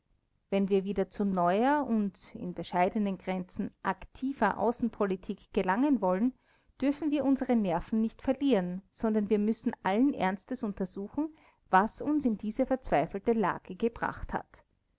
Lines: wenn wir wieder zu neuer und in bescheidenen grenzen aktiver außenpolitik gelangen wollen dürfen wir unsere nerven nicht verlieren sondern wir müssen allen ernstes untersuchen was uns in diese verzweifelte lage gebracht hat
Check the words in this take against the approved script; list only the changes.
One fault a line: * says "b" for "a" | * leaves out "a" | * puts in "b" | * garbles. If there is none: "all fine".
all fine